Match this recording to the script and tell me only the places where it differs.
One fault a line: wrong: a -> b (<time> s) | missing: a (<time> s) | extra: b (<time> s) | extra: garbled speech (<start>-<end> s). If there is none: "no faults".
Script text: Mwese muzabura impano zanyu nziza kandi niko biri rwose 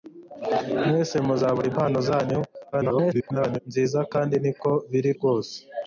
extra: garbled speech (2.7-3.6 s)